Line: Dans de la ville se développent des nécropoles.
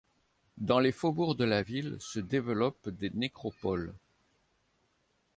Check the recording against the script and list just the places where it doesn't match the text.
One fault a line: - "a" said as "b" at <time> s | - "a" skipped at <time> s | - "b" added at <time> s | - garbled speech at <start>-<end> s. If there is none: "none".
- "les faubourgs" added at 0.8 s